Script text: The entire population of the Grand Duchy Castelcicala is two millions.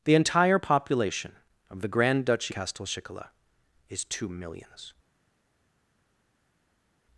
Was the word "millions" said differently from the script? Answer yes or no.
no